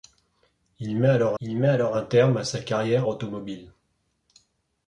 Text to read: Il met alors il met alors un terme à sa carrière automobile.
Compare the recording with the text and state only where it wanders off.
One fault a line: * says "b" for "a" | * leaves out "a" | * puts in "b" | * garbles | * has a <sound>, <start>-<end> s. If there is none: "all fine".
all fine